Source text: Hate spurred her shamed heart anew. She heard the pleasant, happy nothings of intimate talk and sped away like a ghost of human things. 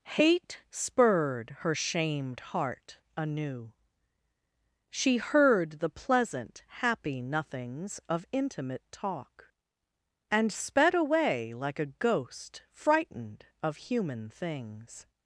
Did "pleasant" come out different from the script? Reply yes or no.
no